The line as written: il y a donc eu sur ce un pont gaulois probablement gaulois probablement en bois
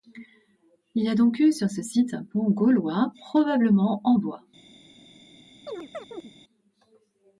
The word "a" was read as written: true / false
true